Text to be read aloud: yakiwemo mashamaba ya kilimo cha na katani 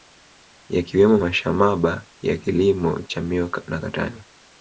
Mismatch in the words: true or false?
true